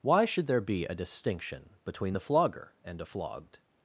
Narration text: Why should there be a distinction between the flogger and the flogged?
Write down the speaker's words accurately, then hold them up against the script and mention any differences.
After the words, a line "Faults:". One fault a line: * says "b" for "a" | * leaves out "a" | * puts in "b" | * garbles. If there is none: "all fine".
Why should there be a distinction between the flogger and a flogged?
Faults:
* says "a" for "the"